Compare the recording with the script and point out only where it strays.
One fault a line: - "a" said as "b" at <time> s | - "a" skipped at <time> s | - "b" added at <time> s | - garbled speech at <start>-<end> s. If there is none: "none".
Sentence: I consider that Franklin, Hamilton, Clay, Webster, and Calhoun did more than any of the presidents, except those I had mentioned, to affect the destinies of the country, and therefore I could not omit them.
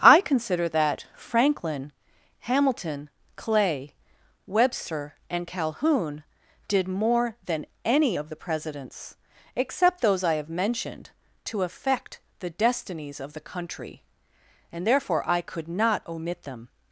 - "had" said as "have" at 10.3 s